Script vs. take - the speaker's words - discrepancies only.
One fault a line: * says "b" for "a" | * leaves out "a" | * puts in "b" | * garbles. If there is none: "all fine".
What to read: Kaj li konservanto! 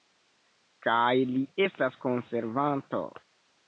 * puts in "estas"